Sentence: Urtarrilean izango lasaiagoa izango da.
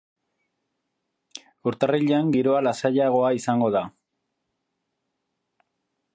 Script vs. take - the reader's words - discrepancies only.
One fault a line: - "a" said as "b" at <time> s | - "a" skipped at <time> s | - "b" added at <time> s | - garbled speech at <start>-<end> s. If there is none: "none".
- "izango" said as "giroa" at 2.4 s